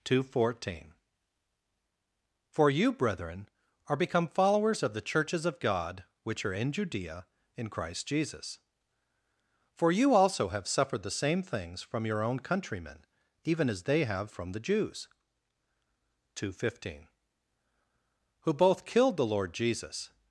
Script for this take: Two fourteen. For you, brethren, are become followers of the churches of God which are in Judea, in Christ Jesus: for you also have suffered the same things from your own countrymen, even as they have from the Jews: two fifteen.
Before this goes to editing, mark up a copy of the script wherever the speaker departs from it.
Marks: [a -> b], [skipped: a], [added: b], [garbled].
Two fourteen. For you, brethren, are become followers of the churches of God which are in Judea, in Christ Jesus: for you also have suffered the same things from your own countrymen, even as they have from the Jews: two fifteen. [added: Who both killed the Lord Jesus]